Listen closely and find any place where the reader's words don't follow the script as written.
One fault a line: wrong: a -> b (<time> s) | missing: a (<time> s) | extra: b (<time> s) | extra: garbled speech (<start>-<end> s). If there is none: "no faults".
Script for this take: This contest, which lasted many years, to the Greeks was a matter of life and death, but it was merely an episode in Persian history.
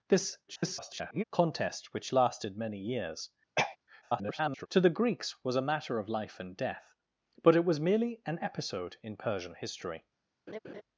extra: garbled speech (0.5-1.2 s)
extra: garbled speech (4.0-4.7 s)